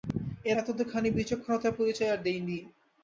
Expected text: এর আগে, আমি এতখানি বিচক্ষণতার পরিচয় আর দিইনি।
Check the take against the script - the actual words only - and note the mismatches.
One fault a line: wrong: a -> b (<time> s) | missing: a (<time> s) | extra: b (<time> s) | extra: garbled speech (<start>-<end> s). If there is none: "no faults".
missing: আগে আমি (0.6 s)